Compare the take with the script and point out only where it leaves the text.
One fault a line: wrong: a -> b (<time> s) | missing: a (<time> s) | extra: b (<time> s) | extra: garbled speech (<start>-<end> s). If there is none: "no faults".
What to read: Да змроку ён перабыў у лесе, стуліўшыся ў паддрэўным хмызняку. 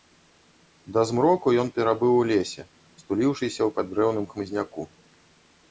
no faults